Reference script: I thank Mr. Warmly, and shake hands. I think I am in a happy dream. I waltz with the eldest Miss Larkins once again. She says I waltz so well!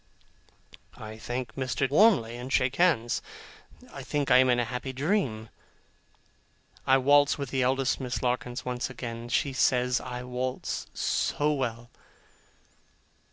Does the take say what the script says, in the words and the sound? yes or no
yes